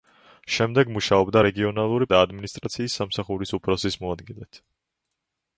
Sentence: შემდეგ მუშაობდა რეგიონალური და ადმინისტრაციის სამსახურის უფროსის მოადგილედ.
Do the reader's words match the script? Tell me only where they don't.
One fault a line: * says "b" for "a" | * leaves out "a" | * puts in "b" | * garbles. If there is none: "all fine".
all fine